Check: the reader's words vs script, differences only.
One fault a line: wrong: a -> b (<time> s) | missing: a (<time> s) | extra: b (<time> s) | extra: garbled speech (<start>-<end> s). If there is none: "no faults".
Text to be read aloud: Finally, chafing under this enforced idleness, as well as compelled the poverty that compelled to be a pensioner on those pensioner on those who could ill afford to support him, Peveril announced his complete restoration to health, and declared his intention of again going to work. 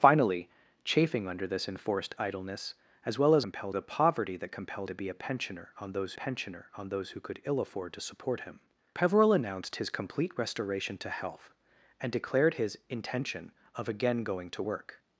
no faults